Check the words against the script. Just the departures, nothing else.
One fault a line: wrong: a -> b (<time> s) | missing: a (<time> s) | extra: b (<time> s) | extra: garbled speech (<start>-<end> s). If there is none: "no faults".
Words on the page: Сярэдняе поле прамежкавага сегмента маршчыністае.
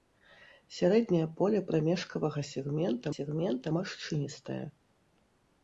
extra: сегмента (3.2 s)